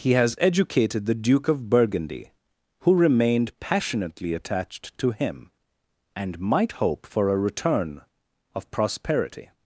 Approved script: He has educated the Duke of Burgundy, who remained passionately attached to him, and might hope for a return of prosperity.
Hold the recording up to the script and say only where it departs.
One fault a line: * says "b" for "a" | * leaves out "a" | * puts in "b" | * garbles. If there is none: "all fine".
all fine